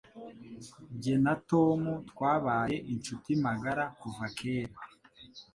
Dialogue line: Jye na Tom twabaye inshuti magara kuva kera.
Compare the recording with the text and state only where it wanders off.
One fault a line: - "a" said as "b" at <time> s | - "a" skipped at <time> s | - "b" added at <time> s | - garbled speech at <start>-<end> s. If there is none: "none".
none